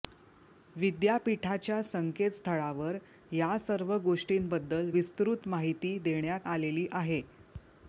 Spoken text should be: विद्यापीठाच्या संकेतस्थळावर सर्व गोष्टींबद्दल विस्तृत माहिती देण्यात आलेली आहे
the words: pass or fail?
fail